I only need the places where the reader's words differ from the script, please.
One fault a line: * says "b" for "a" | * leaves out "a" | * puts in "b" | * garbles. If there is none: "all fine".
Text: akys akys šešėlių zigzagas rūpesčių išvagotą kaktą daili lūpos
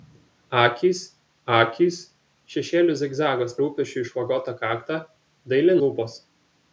all fine